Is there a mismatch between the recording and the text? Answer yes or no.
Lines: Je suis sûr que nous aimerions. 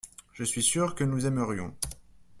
no